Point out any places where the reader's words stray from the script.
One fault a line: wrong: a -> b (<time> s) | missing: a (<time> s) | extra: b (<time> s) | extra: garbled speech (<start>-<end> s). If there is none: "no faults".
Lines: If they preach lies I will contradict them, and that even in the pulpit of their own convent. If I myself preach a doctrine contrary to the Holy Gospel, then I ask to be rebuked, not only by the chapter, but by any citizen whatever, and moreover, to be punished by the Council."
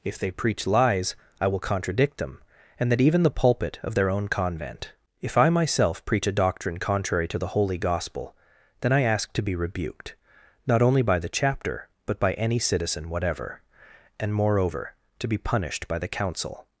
missing: in (3.2 s)